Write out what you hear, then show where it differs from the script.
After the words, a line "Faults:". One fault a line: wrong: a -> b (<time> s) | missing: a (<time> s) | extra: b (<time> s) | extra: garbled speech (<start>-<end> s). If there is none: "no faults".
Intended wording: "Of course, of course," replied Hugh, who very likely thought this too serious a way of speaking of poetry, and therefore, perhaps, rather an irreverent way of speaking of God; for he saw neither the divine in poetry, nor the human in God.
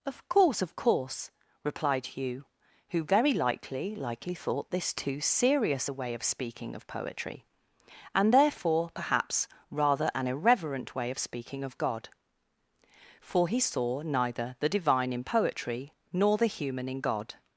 "Of course, of course," replied Hugh, who very likely likely thought this too serious a way of speaking of poetry, and therefore, perhaps, rather an irreverent way of speaking of God; for he saw neither the divine in poetry, nor the human in God.
Faults:
extra: likely (4.0 s)